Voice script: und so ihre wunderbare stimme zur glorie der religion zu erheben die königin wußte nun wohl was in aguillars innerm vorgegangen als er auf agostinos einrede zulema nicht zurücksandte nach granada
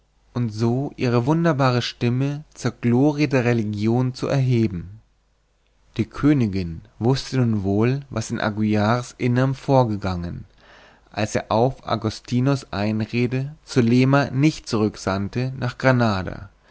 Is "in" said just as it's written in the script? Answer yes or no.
yes